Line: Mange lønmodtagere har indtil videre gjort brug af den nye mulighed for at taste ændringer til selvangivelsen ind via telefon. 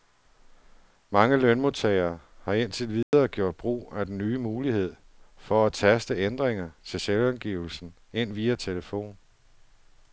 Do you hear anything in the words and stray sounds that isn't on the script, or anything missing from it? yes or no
yes